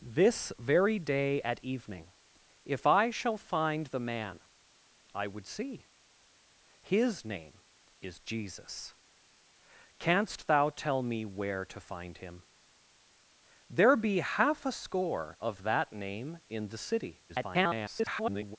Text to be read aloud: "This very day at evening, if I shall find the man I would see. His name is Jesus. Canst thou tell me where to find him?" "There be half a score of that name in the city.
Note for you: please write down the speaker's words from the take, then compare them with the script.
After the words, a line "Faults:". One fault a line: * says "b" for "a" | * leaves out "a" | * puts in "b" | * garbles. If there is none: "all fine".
"This very day at evening, if I shall find the man I would see. His name is Jesus. Canst thou tell me where to find him?" "There be half a score of that name in the city. [garbled]
Faults:
* garbles